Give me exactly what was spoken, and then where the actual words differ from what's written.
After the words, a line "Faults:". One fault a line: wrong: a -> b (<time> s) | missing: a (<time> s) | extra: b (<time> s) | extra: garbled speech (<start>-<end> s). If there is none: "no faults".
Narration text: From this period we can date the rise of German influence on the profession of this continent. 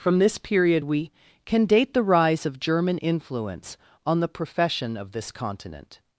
From this period we can date the rise of German influence on the profession of this continent.
Faults:
no faults